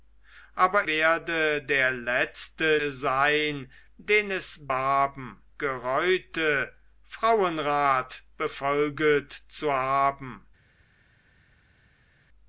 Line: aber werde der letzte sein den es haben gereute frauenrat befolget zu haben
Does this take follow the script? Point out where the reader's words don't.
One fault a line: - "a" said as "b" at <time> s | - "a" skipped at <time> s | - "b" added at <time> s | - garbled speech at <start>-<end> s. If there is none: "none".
none